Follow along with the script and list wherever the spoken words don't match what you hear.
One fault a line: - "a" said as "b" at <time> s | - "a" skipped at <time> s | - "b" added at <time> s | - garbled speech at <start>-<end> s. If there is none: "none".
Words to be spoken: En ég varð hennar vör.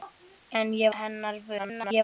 - "varð" skipped at 0.9 s
- garbled speech at 1.6-2.0 s